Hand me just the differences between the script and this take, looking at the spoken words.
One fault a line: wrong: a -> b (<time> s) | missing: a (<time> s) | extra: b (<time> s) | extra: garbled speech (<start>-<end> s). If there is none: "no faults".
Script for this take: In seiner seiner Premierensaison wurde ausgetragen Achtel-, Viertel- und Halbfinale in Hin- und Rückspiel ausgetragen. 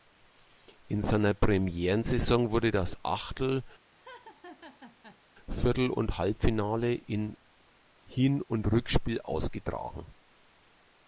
missing: seiner (1.4 s)
wrong: ausgetragen -> das (2.7 s)